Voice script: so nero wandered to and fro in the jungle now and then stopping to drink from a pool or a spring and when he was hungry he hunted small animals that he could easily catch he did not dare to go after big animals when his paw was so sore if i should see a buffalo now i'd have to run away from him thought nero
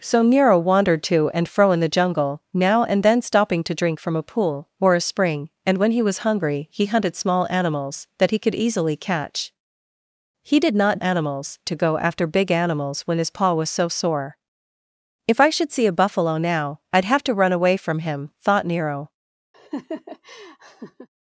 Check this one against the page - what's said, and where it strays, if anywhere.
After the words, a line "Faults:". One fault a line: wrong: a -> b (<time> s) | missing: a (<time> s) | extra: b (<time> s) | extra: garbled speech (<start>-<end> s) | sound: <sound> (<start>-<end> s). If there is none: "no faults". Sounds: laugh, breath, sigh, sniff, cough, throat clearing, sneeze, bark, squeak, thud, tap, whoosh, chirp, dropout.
so nero wandered to and fro in the jungle now and then stopping to drink from a pool or a spring and when he was hungry he hunted small animals that he could easily catch he did not animals to go after big animals when his paw was so sore if i should see a buffalo now i'd have to run away from him thought nero
Faults:
wrong: dare -> animals (11.0 s)
sound: laugh (19.5-21.1 s)